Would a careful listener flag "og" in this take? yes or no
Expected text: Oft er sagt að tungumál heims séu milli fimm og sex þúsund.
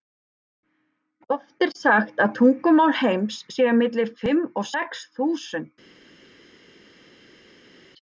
no